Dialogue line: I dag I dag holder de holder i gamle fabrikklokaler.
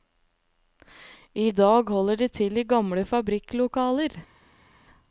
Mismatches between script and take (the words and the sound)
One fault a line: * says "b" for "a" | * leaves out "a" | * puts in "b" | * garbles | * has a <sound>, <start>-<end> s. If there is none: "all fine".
* leaves out "I dag"
* says "til" for "holder"